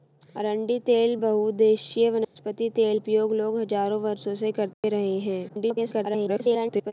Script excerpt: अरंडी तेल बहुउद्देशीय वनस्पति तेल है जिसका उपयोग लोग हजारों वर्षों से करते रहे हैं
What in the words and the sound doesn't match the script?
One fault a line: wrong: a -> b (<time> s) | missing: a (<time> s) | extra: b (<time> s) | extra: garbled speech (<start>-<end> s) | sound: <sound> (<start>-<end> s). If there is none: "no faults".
sound: dropout (2.2-2.4 s)
missing: है जिसका (3.0 s)
sound: dropout (4.7-4.8 s)
extra: garbled speech (5.5-6.9 s)